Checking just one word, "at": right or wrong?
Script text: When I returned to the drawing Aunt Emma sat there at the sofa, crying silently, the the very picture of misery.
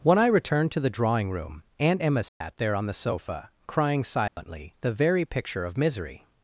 wrong